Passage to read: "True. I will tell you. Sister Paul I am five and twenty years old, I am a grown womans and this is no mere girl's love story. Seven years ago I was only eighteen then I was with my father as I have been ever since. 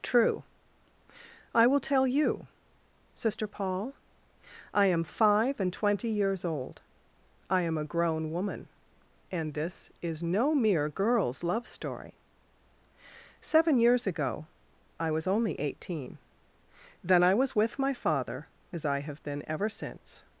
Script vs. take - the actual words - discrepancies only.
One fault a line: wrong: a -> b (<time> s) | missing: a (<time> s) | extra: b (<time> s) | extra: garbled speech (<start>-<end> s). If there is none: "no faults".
wrong: womans -> woman (8.3 s)